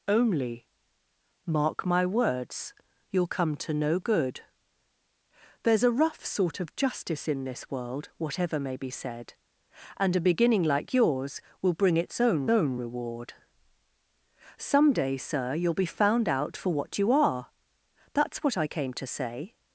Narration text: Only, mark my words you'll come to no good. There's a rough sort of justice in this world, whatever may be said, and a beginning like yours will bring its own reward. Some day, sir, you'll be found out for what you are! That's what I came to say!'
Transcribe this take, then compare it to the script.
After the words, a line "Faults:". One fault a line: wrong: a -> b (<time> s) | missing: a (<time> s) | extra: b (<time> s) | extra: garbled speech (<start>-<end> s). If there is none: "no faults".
Only, mark my words you'll come to no good. There's a rough sort of justice in this world, whatever may be said, and a beginning like yours will bring its own own reward. Some day, sir, you'll be found out for what you are! That's what I came to say!'
Faults:
extra: own (12.5 s)